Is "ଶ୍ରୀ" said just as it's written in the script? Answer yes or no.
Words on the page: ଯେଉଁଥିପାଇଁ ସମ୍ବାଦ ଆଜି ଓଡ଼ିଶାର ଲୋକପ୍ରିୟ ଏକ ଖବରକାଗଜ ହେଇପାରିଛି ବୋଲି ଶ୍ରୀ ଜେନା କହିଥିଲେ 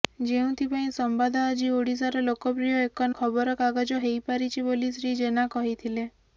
yes